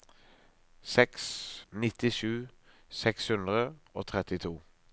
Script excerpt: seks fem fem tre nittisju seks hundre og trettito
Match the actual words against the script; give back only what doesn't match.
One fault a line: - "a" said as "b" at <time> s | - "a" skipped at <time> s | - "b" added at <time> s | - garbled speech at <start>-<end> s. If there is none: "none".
- "fem fem tre" skipped at 1.2 s